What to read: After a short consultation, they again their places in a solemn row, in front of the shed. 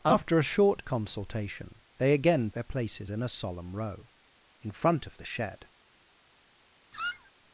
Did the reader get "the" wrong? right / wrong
right